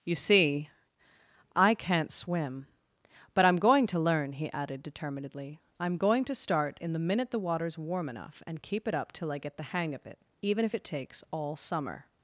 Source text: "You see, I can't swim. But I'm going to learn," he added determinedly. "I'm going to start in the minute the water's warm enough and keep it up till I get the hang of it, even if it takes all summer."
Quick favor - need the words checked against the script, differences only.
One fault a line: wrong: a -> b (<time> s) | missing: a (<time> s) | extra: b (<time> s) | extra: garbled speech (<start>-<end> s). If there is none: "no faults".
no faults